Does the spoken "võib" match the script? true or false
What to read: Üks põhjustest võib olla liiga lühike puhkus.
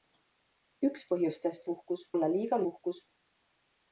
false